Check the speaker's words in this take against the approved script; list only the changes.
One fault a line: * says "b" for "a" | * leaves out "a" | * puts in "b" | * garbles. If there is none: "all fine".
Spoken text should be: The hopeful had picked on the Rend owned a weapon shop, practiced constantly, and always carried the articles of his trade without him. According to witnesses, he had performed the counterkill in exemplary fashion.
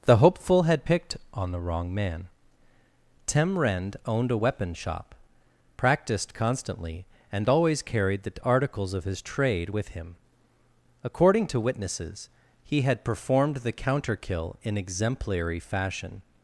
* puts in "wrong man Tem"
* says "with" for "without"